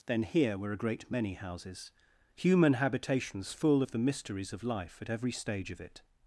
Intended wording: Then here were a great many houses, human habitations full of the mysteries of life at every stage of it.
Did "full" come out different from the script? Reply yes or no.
no